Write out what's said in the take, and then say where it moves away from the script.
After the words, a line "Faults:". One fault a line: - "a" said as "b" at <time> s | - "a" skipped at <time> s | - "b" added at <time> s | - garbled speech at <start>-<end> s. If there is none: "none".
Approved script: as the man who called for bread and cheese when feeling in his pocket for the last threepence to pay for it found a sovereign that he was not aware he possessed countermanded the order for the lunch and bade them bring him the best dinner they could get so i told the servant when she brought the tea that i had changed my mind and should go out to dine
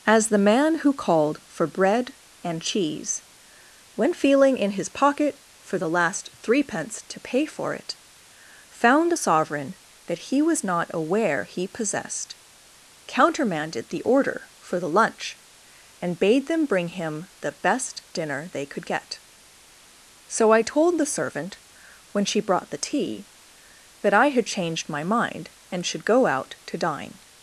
as the man who called for bread and cheese when feeling in his pocket for the last threepence to pay for it found a sovereign that he was not aware he possessed countermanded the order for the lunch and bade them bring him the best dinner they could get so i told the servant when she brought the tea that i had changed my mind and should go out to dine
Faults:
none